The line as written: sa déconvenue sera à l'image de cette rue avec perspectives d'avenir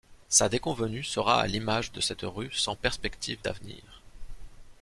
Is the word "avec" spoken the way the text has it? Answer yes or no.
no